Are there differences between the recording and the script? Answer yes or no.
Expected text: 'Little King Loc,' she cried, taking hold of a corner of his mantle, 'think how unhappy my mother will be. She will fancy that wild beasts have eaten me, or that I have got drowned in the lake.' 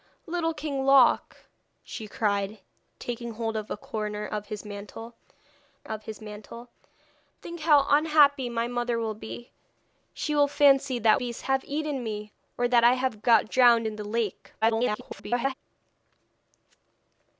yes